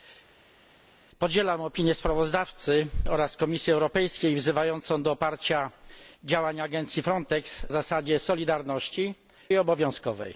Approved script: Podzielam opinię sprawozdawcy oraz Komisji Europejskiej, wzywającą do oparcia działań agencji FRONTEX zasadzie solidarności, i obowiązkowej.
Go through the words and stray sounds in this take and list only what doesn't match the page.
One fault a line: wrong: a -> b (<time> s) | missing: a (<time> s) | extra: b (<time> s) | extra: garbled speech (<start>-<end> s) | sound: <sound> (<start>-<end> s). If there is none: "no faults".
no faults